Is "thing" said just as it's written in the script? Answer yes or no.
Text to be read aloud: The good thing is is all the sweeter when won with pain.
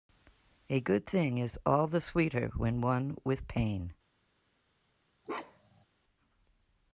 yes